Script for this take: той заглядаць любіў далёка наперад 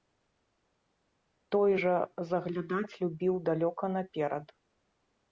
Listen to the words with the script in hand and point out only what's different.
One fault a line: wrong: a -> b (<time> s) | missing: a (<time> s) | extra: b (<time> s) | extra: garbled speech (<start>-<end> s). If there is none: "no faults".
extra: жа (1.8 s)